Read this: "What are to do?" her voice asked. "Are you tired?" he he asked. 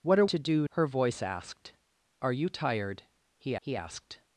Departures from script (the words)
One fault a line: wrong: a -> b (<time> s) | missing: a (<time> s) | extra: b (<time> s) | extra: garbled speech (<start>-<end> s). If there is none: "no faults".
no faults